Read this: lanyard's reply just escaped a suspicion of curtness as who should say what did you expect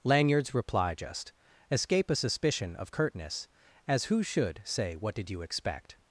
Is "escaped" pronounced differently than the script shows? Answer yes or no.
yes